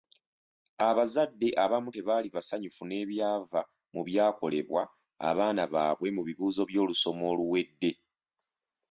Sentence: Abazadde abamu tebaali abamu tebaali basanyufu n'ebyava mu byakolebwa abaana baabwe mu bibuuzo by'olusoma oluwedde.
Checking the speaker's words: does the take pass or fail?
fail